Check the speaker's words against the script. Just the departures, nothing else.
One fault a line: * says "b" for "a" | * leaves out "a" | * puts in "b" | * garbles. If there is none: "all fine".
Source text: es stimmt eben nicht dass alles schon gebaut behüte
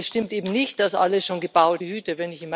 all fine